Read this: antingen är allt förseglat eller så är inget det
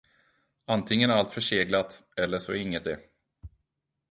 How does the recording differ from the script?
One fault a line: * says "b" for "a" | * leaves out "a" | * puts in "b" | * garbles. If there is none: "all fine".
all fine